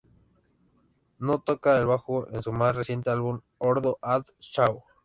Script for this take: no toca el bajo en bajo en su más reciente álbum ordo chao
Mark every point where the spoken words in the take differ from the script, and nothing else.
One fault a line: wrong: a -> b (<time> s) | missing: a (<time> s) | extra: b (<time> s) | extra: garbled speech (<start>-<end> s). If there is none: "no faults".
missing: bajo en (2.4 s)
extra: ad (4.0 s)